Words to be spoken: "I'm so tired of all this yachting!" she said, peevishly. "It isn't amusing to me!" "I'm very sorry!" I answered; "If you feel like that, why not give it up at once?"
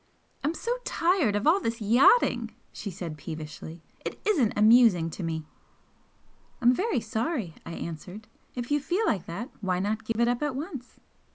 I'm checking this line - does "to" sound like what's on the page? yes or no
yes